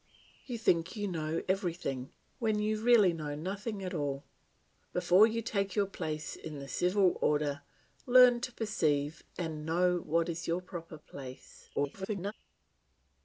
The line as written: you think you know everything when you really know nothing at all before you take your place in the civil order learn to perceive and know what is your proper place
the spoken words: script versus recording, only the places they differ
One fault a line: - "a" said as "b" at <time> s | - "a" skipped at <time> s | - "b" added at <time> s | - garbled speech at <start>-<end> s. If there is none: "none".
- garbled speech at 11.8-12.3 s